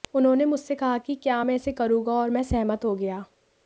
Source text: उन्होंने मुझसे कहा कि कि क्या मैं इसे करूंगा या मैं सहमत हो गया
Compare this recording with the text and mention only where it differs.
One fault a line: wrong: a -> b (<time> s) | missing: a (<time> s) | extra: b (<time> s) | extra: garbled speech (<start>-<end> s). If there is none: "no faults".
missing: कि (1.1 s)
wrong: या -> और (2.1 s)